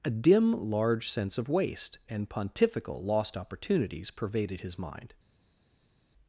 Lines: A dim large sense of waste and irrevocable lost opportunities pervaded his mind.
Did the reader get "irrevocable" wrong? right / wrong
wrong